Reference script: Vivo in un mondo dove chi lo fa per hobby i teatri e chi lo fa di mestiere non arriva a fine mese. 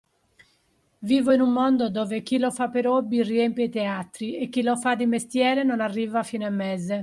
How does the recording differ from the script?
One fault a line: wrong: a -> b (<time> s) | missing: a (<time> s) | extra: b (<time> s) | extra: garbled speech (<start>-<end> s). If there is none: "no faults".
extra: riempie (3.2 s)